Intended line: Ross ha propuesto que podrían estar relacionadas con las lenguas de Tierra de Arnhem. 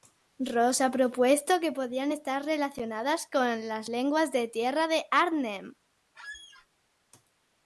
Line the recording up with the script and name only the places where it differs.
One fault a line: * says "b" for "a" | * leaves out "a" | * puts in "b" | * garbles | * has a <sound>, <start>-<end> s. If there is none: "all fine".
* has a squeak, 6.1-6.7 s